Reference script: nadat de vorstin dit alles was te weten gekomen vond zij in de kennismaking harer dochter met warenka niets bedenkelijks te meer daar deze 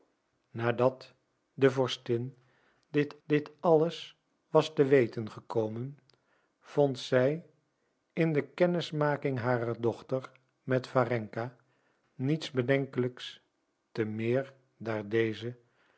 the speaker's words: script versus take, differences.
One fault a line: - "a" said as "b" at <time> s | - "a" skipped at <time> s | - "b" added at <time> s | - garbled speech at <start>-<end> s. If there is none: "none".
- "dit" added at 3.2 s